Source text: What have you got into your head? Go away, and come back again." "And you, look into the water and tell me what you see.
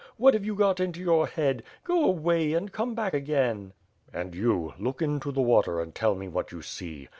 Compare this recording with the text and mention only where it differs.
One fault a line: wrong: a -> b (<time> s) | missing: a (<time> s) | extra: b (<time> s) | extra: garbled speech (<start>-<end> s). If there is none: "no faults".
no faults